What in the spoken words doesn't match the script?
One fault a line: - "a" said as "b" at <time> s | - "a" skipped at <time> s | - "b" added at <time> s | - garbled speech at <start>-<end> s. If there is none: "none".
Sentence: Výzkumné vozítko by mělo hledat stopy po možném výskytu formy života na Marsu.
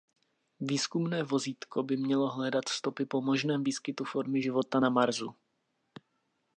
none